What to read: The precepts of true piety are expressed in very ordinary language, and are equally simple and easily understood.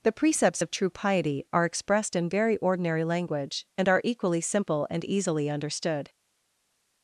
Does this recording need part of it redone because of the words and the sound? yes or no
no